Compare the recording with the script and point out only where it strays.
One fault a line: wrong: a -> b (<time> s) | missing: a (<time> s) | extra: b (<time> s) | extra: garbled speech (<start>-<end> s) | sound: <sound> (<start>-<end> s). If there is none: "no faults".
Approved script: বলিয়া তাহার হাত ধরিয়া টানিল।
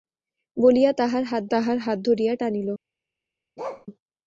extra: তাহার হাত (1.5 s)
sound: bark (3.6-3.9 s)